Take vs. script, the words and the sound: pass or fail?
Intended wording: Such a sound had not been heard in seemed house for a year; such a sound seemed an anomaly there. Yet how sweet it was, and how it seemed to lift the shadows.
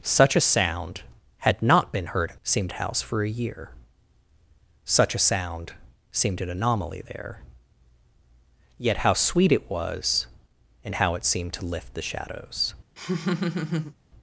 fail